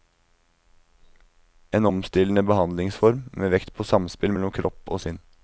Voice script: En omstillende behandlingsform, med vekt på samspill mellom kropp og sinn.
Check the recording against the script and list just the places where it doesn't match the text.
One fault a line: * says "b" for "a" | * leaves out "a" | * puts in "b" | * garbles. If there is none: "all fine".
all fine